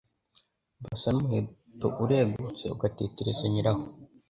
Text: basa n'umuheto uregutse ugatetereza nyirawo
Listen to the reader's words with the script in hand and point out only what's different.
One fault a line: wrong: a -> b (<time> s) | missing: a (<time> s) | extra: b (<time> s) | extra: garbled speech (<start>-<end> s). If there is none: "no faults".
no faults